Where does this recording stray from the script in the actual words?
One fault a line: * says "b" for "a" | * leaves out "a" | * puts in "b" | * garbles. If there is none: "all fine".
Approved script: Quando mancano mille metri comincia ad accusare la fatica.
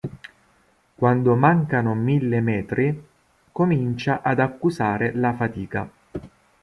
all fine